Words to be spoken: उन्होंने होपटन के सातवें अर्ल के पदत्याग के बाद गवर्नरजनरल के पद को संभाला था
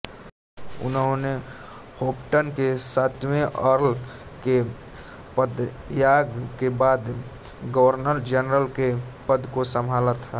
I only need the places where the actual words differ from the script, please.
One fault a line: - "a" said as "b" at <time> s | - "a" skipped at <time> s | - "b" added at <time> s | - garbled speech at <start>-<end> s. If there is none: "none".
none